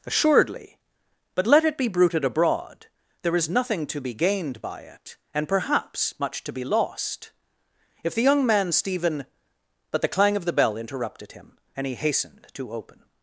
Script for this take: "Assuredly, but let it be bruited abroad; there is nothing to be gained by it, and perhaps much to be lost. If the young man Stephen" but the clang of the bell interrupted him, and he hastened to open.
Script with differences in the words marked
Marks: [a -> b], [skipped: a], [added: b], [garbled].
"Assuredly, but let it be bruited abroad; there is nothing to be gained by it, and perhaps much to be lost. If the young man Stephen" but the clang of the bell interrupted him, and he hastened to open.